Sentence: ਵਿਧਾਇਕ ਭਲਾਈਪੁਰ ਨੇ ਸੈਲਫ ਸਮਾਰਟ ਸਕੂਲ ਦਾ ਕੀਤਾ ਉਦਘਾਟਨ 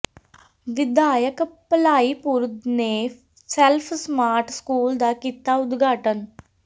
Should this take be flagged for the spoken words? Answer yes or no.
no